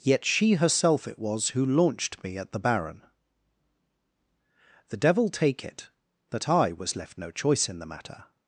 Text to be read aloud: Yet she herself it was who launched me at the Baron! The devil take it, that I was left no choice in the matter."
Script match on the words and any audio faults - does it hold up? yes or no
yes